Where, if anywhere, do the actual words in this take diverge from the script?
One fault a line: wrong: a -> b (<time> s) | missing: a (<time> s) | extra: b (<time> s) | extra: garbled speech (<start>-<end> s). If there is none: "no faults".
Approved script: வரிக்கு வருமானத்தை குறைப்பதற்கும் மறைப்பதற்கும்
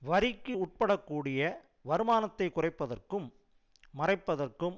extra: உட்படக்கூடிய (0.6 s)